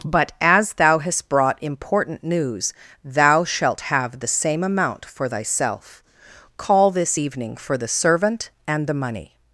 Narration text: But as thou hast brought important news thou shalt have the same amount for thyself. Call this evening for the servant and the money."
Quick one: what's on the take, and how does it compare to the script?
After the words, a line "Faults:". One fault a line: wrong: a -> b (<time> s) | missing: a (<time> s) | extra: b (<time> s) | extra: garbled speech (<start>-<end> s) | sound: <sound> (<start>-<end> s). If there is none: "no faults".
But as thou hast brought important news thou shalt have the same amount for thyself. Call this evening for the servant and the money."
Faults:
no faults